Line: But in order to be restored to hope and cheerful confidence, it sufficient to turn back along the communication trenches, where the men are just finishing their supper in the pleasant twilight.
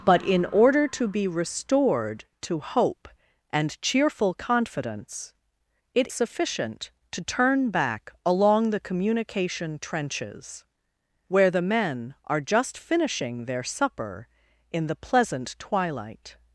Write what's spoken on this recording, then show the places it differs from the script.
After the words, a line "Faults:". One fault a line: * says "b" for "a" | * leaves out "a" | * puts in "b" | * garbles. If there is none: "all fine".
But in order to be restored to hope and cheerful confidence, it sufficient to turn back along the communication trenches, where the men are just finishing their supper in the pleasant twilight.
Faults:
all fine